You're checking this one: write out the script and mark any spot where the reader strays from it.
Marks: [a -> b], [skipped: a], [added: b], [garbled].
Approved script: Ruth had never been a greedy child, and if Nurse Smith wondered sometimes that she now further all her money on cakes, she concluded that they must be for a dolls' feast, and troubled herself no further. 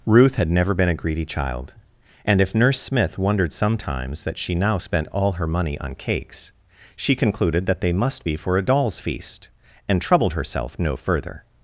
Ruth had never been a greedy child, and if Nurse Smith wondered sometimes that she now [further -> spent] all her money on cakes, she concluded that they must be for a dolls' feast, and troubled herself no further.